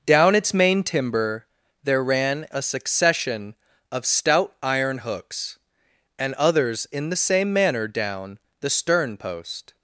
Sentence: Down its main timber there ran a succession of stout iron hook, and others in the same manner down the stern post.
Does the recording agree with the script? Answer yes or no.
no